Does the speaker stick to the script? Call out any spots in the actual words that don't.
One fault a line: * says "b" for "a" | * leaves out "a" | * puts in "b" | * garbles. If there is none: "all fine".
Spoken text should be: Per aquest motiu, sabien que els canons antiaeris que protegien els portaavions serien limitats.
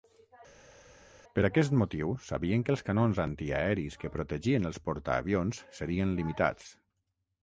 all fine